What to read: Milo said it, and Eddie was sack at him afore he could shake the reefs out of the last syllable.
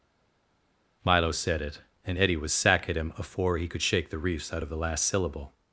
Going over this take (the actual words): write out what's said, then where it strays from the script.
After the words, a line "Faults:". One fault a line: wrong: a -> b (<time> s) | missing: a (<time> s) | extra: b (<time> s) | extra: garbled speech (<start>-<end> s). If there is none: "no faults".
Milo said it, and Eddie was sack at him afore he could shake the reefs out of the last syllable.
Faults:
no faults